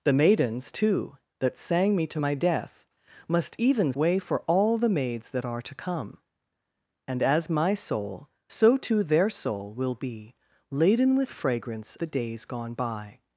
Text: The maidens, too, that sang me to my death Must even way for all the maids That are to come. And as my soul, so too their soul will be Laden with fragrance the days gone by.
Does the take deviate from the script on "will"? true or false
false